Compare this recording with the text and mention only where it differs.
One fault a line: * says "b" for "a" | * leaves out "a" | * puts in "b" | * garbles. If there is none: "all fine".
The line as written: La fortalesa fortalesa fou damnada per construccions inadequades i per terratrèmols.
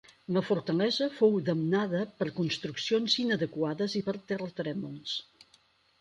* leaves out "fortalesa"